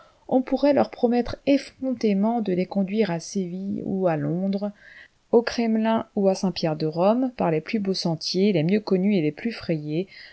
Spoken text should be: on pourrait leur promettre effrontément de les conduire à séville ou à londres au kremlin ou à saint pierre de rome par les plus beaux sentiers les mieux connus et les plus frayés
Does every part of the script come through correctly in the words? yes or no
yes